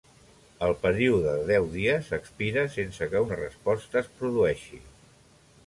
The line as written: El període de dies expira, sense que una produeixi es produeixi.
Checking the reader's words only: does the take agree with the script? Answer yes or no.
no